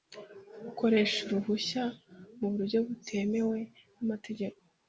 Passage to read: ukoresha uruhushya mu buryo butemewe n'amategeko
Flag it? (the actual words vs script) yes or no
no